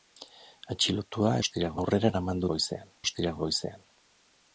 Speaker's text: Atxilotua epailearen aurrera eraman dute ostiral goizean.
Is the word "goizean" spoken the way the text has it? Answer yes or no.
yes